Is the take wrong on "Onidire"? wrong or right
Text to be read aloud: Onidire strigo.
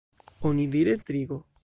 right